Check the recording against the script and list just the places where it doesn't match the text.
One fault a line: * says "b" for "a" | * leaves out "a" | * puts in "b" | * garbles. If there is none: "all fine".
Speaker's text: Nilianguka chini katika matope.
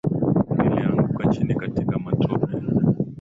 all fine